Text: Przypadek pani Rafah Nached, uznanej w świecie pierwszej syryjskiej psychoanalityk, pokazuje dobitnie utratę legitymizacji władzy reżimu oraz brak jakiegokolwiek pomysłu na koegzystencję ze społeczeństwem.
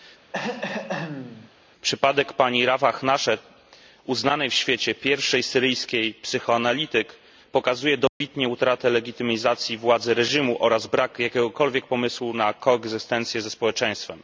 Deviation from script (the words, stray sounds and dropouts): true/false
true